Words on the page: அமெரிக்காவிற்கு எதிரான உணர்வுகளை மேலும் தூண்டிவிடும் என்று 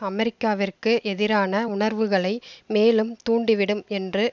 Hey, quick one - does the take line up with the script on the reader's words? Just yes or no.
yes